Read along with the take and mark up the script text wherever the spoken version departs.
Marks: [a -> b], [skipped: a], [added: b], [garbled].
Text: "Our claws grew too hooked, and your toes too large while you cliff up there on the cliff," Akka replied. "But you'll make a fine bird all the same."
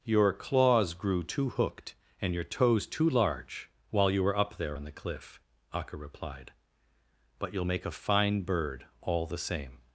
["Our -> Your] claws grew too hooked, and your toes too large while you [cliff -> were] up there on the cliff," Akka replied. "But you'll make a fine bird all the same."